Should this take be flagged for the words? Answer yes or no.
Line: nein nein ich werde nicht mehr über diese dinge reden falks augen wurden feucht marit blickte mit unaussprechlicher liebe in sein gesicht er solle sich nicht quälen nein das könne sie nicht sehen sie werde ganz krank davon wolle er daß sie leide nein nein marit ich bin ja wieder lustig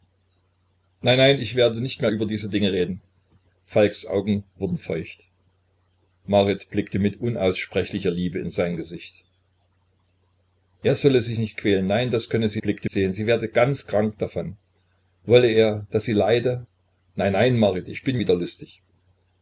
yes